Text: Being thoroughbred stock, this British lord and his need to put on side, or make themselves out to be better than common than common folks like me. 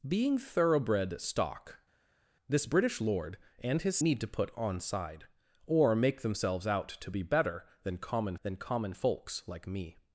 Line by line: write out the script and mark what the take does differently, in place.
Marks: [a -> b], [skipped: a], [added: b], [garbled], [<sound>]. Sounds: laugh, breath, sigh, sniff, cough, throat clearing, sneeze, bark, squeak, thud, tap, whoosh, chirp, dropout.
Being thoroughbred stock, this British lord and his need to put on side, or make themselves out to be better than common than common folks like me.